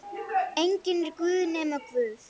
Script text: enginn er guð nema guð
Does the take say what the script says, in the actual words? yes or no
yes